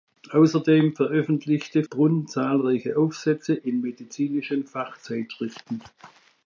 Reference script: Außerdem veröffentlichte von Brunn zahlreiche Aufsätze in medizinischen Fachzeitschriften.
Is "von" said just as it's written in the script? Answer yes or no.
no